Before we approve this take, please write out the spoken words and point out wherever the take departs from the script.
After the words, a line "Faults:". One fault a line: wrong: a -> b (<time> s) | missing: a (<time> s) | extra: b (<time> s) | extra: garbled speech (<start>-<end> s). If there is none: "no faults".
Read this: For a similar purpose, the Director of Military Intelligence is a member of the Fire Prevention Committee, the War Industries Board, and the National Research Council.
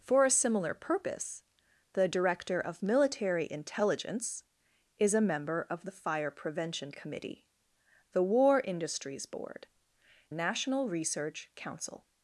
For a similar purpose, the Director of Military Intelligence is a member of the Fire Prevention Committee, the War Industries Board, National Research Council.
Faults:
missing: and the (9.7 s)